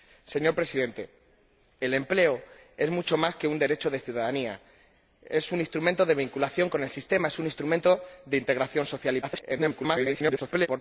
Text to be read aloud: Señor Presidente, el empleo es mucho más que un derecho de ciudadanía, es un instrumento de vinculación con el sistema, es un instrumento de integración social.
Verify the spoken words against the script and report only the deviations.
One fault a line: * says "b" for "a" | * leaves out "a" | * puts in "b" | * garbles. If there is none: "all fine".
* garbles